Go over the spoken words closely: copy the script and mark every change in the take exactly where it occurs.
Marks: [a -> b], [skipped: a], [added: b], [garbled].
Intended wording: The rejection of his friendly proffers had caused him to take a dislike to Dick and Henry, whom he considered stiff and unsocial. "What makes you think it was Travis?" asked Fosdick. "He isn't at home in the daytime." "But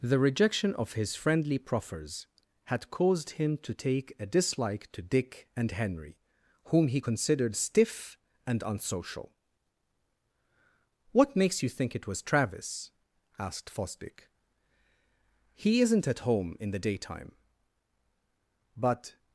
The rejection of his friendly proffers had caused him to take a dislike to Dick and Henry, whom he considered stiff and unsocial. "What makes you think it was Travis?" asked Fosdick. "He isn't at home in the daytime." "But